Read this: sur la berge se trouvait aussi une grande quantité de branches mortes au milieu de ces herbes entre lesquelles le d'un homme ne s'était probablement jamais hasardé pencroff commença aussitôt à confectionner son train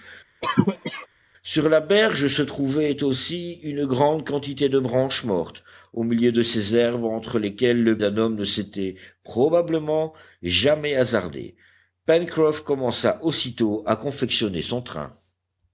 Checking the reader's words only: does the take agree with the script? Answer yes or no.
yes